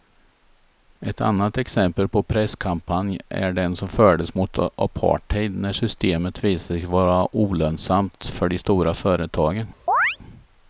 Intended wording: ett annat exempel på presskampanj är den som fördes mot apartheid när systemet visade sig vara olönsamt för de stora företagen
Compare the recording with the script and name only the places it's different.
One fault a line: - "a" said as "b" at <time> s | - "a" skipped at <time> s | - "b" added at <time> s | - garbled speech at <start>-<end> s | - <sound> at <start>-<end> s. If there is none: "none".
- chirp at 9.9-10.2 s